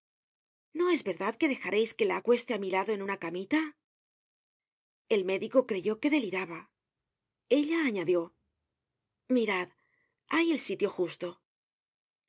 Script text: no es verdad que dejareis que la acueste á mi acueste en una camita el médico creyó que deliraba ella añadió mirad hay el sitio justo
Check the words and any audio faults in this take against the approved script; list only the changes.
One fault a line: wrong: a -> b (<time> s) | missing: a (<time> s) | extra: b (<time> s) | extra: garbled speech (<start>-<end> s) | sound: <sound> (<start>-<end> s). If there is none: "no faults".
wrong: acueste -> lado (2.8 s)